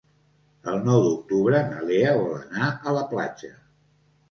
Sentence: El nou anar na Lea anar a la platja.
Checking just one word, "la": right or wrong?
right